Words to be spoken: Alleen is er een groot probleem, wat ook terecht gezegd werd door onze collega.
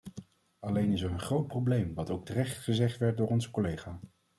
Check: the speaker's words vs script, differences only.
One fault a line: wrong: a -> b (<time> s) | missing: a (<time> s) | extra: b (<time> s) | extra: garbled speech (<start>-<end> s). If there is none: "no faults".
no faults